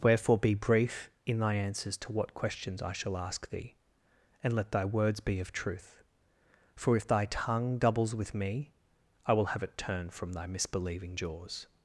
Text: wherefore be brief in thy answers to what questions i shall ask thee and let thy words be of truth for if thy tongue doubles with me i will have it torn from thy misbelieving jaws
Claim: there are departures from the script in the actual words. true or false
true